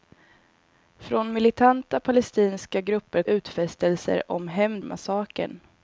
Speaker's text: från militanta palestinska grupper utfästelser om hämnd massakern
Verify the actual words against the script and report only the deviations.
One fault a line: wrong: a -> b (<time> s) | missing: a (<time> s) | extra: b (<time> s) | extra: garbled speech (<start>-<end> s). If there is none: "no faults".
no faults